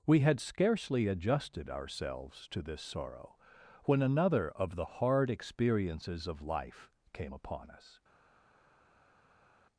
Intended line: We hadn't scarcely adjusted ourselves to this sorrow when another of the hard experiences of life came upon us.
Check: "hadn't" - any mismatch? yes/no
yes